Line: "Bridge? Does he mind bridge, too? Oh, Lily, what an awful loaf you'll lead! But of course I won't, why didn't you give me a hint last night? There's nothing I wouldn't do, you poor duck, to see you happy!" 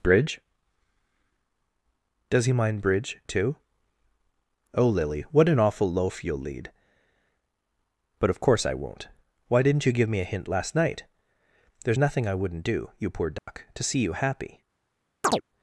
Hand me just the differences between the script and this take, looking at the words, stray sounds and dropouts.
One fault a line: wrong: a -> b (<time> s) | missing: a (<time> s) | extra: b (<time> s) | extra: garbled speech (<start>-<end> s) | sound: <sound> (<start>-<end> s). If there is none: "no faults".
sound: dropout (13.4-13.5 s)
sound: chirp (15.2-15.4 s)